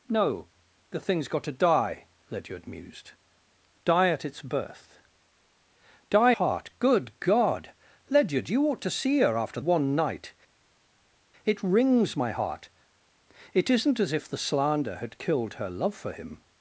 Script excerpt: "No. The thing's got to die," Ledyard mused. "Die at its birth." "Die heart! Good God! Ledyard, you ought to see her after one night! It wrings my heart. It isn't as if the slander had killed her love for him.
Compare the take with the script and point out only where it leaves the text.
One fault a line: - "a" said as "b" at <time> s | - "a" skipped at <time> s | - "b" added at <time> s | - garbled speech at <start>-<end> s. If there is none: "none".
none